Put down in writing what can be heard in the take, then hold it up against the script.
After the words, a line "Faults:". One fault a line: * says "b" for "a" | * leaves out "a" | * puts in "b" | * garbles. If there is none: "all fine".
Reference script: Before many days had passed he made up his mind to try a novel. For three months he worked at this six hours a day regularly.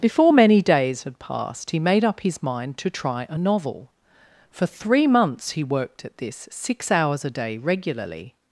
Before many days had passed he made up his mind to try a novel. For three months he worked at this six hours a day regularly.
Faults:
all fine